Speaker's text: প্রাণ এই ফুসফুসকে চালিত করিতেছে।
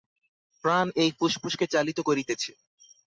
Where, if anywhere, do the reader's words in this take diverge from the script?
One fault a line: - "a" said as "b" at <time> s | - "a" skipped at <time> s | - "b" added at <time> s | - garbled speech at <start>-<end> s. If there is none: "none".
none